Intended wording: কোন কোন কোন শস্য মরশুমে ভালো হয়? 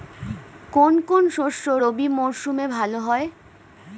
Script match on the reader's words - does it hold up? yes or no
no